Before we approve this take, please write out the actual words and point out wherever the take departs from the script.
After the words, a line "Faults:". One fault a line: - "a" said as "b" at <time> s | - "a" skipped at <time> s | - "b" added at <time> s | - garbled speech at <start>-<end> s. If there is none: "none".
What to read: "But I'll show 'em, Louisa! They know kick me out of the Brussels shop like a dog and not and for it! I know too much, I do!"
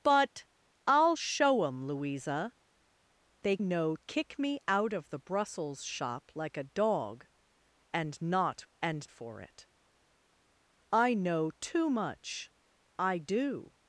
"But I'll show 'em, Louisa! They know kick me out of the Brussels shop like a dog and not and for it! I know too much, I do!"
Faults:
none